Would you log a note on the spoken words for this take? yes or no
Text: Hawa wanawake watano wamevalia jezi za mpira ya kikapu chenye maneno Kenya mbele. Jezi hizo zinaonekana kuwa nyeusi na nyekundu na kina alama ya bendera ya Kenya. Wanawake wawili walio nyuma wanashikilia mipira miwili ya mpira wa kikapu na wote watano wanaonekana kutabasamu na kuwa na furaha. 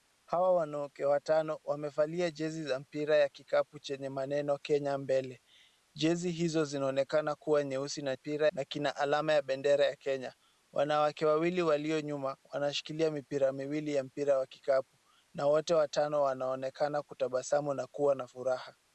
yes